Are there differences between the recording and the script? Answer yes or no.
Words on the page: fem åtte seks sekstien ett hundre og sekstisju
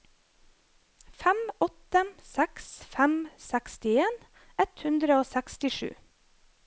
yes